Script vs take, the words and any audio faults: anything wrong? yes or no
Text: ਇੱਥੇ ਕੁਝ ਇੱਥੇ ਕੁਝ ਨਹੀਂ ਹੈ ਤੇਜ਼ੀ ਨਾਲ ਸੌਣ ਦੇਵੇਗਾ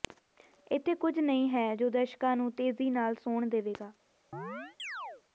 yes